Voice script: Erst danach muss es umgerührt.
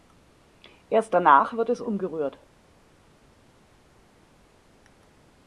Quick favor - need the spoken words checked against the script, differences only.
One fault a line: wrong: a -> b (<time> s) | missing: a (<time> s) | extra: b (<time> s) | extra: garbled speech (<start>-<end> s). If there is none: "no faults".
wrong: muss -> wird (1.5 s)